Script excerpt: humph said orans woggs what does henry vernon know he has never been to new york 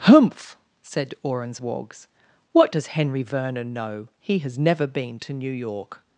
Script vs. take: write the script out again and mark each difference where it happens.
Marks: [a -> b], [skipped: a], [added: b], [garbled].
humph said orans woggs what does henry vernon know he has never been to new york